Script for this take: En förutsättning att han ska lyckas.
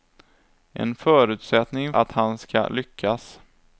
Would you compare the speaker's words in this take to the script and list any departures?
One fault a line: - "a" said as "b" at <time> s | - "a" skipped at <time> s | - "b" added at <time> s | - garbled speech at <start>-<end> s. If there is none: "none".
none